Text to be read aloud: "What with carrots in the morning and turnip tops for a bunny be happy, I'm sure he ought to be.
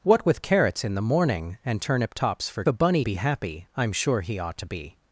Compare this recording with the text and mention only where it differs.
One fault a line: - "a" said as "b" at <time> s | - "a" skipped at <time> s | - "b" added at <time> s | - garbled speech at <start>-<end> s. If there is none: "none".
none